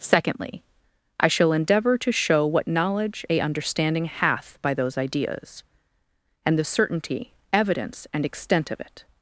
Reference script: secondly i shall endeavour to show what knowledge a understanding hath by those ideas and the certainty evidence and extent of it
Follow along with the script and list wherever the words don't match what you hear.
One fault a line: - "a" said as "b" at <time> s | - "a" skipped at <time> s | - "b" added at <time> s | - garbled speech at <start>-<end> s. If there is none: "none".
none